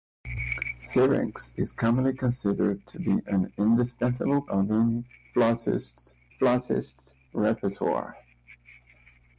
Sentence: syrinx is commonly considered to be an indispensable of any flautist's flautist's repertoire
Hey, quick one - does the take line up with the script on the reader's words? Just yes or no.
yes